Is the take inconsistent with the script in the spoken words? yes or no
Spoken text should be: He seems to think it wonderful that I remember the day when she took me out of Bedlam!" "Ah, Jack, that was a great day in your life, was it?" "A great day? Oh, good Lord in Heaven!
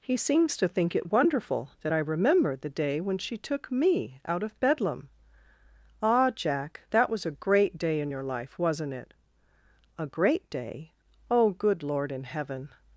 yes